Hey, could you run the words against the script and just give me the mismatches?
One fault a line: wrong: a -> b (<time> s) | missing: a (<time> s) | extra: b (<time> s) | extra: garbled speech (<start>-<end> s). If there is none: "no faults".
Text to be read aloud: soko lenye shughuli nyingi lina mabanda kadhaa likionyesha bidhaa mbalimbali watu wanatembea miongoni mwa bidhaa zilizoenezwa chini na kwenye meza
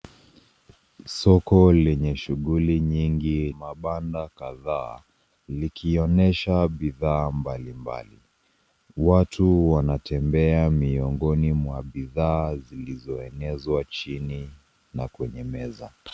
missing: lina (3.5 s)